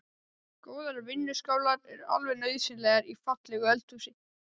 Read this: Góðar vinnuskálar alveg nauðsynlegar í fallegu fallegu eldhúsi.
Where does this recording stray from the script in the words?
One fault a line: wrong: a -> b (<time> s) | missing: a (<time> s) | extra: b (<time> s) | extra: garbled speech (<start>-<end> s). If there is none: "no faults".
extra: eru (2.0 s)
missing: fallegu (3.7 s)